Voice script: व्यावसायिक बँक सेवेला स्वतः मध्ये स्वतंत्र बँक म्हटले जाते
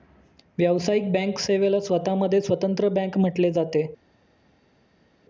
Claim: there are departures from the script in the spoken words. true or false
false